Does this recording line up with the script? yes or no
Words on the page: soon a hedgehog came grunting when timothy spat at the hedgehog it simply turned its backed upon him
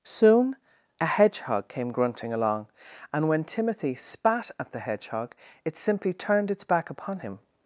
no